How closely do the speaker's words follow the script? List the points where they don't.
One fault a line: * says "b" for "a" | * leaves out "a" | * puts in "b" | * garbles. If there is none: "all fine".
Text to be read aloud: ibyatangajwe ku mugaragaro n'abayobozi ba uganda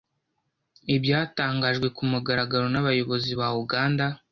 all fine